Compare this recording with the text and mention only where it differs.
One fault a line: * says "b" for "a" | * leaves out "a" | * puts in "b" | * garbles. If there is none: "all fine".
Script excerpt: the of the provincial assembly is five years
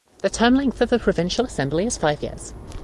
* puts in "term length"